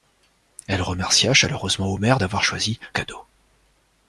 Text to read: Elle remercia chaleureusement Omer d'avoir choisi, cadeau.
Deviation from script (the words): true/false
false